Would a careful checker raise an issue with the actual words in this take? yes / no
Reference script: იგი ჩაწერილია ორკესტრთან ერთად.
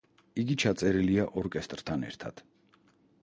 no